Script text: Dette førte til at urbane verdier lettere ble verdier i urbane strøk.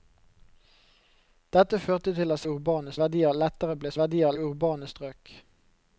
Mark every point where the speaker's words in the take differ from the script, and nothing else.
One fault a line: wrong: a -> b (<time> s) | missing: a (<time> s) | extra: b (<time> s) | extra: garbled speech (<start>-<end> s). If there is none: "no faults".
no faults